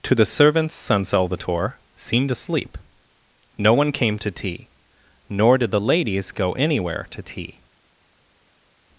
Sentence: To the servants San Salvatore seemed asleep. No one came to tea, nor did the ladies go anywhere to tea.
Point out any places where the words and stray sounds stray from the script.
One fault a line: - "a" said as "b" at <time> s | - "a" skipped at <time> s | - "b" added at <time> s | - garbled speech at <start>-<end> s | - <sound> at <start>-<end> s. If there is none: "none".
none